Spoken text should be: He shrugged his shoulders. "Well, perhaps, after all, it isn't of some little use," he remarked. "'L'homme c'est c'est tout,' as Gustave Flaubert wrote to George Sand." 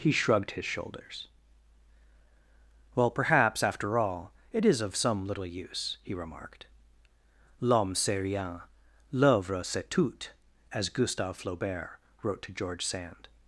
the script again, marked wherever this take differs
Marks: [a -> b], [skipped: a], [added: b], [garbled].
He shrugged his shoulders. "Well, perhaps, after all, it [isn't -> is] of some little use," he remarked. "'L'homme c'est [added: rien l'œuvre] c'est tout,' as Gustave Flaubert wrote to George Sand."